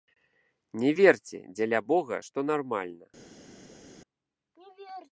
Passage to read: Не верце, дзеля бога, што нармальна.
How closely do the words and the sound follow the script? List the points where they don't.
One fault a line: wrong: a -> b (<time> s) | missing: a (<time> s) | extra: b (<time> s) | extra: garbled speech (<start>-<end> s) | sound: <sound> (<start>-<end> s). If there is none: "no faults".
no faults